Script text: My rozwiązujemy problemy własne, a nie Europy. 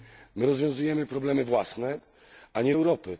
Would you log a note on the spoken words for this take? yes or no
no